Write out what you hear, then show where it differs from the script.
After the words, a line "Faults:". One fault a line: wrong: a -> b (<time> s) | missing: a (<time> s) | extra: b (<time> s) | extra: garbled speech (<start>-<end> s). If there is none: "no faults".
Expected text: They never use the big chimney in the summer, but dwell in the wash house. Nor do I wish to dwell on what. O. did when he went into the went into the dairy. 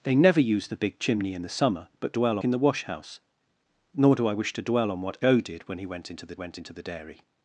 They never use the big chimney in the summer, but dwell in the wash house. Nor do I wish to dwell on what. O. did when he went into the went into the dairy.
Faults:
no faults